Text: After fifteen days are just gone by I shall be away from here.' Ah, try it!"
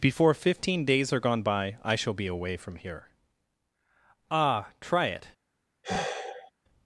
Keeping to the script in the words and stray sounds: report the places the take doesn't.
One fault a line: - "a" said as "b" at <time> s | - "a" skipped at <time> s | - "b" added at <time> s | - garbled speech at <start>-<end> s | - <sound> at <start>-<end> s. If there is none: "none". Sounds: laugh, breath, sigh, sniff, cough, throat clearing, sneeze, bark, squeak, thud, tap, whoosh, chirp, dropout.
- "After" said as "Before" at 0.0 s
- "just" skipped at 1.2 s
- sigh at 5.8-6.5 s